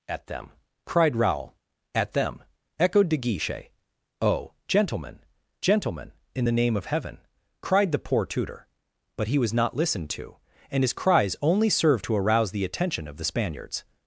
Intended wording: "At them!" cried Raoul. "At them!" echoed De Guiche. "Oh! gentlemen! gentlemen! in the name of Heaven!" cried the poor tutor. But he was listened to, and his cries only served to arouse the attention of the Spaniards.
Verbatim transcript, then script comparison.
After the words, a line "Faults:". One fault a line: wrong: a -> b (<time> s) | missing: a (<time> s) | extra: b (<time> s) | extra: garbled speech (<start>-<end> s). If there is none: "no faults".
"At them!" cried Raoul. "At them!" echoed De Guiche. "Oh! gentlemen! gentlemen! in the name of Heaven!" cried the poor tutor. But he was not listened to, and his cries only served to arouse the attention of the Spaniards.
Faults:
extra: not (9.5 s)